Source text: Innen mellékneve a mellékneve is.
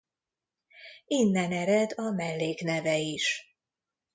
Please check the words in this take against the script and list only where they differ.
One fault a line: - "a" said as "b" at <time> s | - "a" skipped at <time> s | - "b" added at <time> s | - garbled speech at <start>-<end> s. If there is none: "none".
- "mellékneve" said as "ered" at 1.5 s